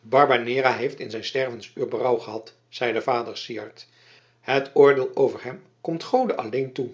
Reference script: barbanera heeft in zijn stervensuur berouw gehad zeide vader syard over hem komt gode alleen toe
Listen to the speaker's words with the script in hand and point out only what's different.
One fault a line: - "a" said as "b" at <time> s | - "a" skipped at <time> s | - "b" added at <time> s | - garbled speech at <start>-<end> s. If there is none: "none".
- "het oordeel" added at 4.4 s